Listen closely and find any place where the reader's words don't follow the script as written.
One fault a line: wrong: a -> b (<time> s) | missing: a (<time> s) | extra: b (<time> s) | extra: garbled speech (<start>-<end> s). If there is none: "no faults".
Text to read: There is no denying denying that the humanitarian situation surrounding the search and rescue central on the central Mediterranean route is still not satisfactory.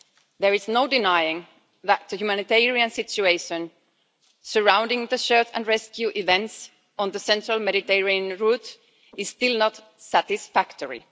missing: denying (1.4 s)
wrong: central -> events (6.2 s)